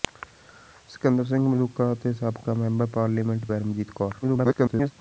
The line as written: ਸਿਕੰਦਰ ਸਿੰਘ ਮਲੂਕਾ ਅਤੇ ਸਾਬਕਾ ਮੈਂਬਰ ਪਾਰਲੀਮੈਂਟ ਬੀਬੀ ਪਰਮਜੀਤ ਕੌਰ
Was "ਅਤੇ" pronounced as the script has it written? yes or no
yes